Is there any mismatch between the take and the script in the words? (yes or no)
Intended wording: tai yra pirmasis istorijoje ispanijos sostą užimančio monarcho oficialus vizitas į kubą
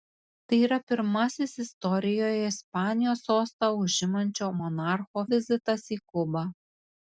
yes